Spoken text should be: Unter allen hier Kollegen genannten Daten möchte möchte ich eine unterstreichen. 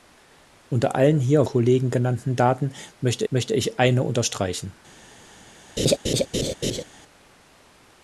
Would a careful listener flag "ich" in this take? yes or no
no